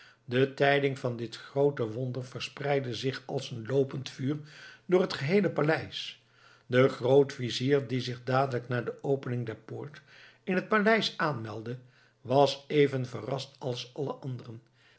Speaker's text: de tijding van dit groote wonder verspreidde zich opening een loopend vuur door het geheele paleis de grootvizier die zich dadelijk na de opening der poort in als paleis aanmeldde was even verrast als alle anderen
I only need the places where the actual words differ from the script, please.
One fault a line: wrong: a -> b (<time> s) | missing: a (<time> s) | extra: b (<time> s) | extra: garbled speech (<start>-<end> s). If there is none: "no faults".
wrong: opening -> als (3.2 s)
wrong: als -> het (10.5 s)